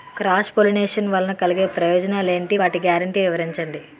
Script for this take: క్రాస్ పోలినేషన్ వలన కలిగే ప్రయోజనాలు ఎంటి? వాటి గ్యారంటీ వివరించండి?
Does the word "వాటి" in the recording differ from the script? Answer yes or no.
no